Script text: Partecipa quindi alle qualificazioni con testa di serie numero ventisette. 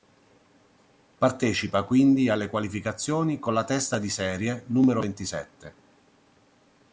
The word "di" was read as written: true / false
true